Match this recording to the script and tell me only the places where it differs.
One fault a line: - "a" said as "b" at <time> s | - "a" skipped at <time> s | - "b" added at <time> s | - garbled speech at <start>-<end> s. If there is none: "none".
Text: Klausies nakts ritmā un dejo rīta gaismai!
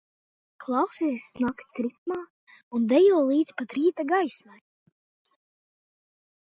- "līdz pat" added at 3.3 s